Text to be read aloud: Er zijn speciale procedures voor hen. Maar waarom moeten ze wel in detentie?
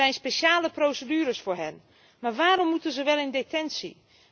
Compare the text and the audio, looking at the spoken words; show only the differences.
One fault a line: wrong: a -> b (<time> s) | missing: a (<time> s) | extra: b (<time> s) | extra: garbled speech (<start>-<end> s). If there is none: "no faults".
no faults